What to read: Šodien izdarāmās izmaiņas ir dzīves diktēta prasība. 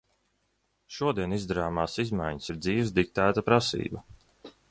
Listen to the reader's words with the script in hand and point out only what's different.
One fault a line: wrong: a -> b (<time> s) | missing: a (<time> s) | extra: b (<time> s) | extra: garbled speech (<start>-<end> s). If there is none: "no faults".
no faults